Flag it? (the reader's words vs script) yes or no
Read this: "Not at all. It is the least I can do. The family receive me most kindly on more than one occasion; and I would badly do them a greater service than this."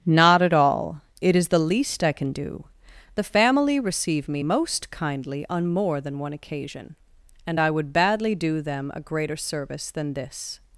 no